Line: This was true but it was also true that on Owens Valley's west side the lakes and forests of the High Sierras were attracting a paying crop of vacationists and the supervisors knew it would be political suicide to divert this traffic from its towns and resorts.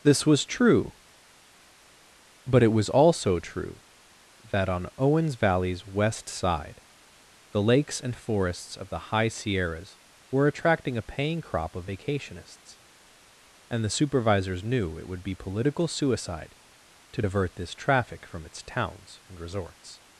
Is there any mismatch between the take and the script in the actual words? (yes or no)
no